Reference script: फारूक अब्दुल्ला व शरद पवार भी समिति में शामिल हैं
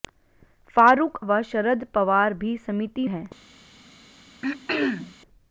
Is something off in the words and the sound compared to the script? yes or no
yes